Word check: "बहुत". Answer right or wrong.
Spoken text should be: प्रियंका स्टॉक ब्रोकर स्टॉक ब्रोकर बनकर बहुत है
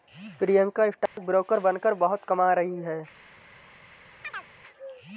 wrong